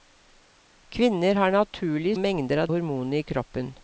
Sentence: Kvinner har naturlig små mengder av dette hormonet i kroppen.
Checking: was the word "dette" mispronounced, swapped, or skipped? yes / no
yes